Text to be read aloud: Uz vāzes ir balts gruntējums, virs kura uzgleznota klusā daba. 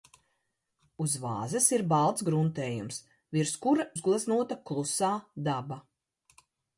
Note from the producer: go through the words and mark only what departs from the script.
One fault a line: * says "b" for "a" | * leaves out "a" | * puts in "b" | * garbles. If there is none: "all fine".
all fine